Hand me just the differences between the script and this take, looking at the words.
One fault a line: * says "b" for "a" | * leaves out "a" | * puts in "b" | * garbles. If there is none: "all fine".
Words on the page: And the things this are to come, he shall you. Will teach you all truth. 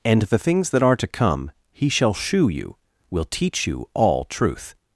* says "that" for "this"
* puts in "shew"